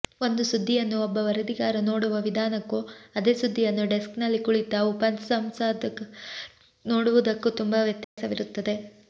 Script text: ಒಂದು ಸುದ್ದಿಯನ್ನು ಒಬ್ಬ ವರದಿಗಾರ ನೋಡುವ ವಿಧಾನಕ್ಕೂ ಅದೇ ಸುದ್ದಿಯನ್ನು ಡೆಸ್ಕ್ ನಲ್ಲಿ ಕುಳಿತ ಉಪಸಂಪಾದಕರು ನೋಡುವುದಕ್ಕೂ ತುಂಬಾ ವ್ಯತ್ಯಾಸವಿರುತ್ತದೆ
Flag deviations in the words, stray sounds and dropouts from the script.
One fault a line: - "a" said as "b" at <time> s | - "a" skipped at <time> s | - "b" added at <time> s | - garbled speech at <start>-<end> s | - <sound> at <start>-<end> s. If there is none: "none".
- dropout at 8.0-8.2 s